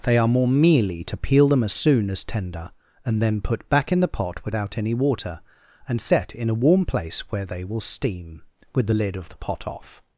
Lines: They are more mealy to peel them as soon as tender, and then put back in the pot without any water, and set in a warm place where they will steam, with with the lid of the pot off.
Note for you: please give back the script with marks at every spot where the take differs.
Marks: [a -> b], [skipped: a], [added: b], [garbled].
They are more mealy to peel them as soon as tender, and then put back in the pot without any water, and set in a warm place where they will steam, with [skipped: with] the lid of the pot off.